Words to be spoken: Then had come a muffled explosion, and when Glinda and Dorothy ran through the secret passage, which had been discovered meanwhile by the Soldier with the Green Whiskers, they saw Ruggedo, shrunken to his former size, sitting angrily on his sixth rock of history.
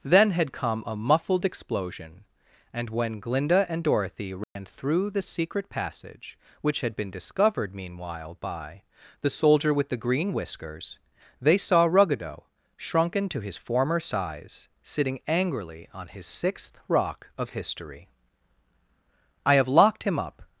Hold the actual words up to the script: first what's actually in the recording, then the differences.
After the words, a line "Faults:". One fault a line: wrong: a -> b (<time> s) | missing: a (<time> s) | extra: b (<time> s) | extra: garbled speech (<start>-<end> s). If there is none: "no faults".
Then had come a muffled explosion, and when Glinda and Dorothy ran through the secret passage, which had been discovered meanwhile by the Soldier with the Green Whiskers, they saw Ruggedo, shrunken to his former size, sitting angrily on his sixth rock of history. "I have locked him up
Faults:
extra: I have locked him up (19.4 s)